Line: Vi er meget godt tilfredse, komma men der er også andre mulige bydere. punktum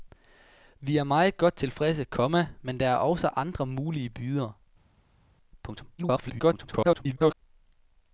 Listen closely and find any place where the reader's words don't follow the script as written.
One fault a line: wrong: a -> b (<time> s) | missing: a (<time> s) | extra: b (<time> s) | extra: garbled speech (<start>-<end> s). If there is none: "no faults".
extra: garbled speech (6.0-7.3 s)